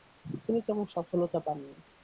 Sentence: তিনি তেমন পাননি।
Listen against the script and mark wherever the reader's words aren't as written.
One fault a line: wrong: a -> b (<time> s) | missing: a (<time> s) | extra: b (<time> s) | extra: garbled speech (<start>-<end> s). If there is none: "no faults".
extra: সফলতা (0.9 s)